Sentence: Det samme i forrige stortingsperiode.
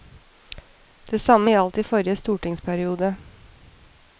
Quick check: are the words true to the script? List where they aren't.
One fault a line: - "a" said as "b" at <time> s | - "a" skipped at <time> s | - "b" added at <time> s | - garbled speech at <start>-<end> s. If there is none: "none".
- "gjaldt" added at 1.5 s